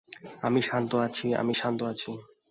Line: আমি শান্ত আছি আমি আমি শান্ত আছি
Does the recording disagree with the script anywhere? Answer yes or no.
yes